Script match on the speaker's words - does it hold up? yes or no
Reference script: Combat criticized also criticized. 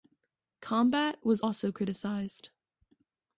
no